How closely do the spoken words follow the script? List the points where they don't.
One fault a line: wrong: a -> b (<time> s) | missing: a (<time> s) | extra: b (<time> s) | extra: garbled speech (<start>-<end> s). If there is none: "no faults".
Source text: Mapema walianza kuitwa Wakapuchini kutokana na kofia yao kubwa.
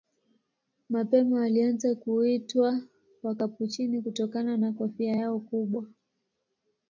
no faults